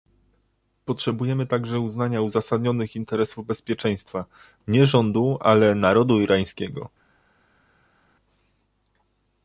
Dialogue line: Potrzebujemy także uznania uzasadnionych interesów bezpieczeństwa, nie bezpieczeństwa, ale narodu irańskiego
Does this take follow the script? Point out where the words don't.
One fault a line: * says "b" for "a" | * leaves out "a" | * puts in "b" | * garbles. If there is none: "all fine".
* says "rządu" for "bezpieczeństwa"